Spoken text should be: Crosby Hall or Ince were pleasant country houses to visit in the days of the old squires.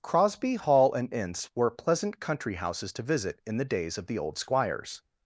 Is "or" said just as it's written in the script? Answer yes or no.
no